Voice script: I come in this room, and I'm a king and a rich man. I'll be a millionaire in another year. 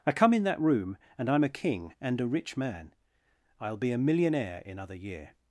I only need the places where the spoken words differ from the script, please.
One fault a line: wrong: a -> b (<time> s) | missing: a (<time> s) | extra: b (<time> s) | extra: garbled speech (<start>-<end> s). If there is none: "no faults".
wrong: this -> that (0.4 s)
wrong: another -> other (4.8 s)